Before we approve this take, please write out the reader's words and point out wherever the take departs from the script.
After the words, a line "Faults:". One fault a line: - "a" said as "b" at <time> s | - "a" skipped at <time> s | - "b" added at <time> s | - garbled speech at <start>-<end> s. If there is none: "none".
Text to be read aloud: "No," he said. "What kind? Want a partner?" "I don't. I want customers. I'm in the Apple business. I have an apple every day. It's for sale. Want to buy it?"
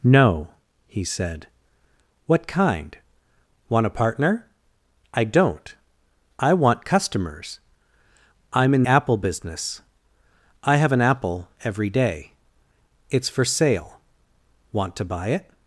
"No," he said. "What kind? Want a partner?" "I don't. I want customers. I'm in Apple business. I have an apple every day. It's for sale. Want to buy it?"
Faults:
- "the" skipped at 8.8 s